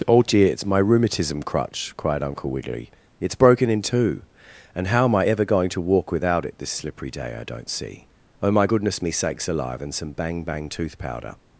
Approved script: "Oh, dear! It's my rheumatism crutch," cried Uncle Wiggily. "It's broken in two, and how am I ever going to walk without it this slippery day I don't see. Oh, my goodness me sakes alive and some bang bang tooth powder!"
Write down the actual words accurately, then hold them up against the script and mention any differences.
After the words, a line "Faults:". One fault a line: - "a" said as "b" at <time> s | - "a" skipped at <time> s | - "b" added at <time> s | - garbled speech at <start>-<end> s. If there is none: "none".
"Oh, dear! It's my rheumatism crutch," cried Uncle Wiggily. "It's broken in two, and how am I ever going to walk without it this slippery day I don't see. Oh, my goodness me sakes alive and some bang bang tooth powder!"
Faults:
none